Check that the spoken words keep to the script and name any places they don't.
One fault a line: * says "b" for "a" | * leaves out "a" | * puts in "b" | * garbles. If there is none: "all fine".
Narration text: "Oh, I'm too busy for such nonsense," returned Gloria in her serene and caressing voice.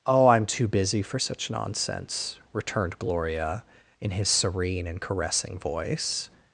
* says "his" for "her"